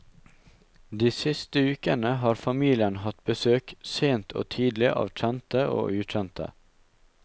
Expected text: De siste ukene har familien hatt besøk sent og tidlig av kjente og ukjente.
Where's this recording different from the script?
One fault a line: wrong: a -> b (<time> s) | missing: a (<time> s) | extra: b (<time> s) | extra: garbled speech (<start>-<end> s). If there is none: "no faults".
no faults